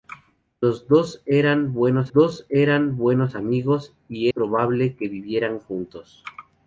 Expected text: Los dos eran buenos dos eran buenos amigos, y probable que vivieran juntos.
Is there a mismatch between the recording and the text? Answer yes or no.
no